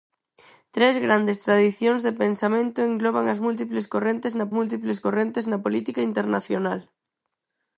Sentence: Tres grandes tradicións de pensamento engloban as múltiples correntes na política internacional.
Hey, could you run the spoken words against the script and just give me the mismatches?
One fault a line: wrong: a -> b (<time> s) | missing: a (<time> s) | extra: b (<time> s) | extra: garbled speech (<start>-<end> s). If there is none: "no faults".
extra: múltiples correntes na (4.6 s)